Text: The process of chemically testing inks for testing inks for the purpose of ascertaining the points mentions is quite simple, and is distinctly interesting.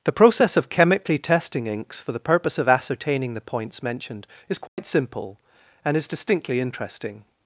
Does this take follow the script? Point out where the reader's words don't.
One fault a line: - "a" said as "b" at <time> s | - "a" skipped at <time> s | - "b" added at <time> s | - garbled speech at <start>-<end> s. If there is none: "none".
- "testing inks for" skipped at 2.1 s
- "mentions" said as "mentioned" at 3.8 s